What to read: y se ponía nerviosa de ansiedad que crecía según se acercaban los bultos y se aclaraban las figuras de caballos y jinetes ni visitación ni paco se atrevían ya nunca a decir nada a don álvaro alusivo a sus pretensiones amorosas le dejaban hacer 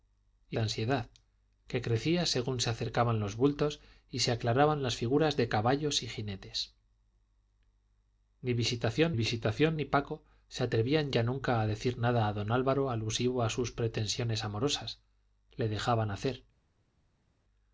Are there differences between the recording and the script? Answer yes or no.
yes